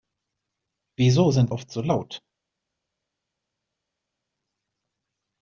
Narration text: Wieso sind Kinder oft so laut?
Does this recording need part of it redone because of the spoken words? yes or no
yes